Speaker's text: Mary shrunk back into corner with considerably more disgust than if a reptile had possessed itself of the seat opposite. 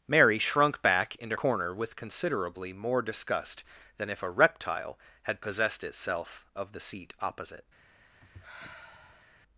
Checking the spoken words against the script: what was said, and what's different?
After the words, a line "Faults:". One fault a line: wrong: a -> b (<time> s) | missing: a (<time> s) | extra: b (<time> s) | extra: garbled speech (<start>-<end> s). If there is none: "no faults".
Mary shrunk back into corner with considerably more disgust than if a reptile had possessed itself of the seat opposite.
Faults:
no faults